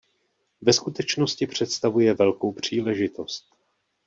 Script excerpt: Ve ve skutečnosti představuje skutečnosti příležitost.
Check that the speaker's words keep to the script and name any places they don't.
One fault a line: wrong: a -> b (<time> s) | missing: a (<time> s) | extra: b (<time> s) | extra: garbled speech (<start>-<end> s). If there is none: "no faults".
missing: ve (0.7 s)
wrong: skutečnosti -> velkou (2.1 s)